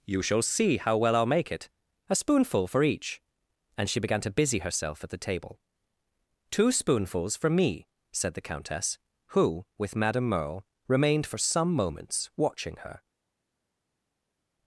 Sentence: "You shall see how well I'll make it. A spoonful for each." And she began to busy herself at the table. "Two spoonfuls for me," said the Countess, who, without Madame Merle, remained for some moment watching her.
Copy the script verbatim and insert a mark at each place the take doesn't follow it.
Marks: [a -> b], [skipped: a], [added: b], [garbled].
"You shall see how well I'll make it. A spoonful for each." And she began to busy herself at the table. "Two spoonfuls for me," said the Countess, who, [without -> with] Madame Merle, remained for some [moment -> moments] watching her.